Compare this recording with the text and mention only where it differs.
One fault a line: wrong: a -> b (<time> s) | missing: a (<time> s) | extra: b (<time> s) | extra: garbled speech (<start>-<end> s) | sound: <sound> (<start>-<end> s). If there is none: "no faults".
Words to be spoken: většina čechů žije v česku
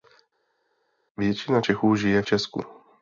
missing: v (2.2 s)